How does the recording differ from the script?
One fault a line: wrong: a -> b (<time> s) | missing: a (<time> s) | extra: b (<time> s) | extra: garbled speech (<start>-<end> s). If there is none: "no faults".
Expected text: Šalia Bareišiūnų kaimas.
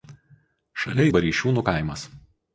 no faults